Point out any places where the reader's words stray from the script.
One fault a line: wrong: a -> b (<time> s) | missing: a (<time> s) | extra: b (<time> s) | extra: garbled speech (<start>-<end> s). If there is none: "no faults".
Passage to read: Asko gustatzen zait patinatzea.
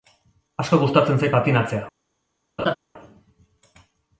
no faults